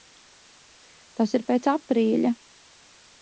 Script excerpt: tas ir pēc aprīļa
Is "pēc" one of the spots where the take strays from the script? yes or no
no